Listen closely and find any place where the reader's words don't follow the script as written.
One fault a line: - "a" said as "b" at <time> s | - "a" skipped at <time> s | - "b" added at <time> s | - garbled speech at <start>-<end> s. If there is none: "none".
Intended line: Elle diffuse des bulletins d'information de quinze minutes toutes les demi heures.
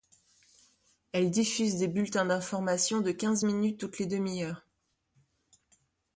none